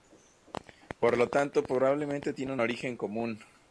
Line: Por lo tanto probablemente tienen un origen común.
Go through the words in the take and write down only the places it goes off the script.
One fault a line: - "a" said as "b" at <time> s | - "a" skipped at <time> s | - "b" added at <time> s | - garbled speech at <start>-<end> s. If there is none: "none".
none